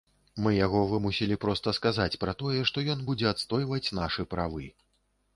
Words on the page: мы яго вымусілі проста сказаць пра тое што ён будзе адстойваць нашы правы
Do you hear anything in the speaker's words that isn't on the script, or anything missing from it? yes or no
no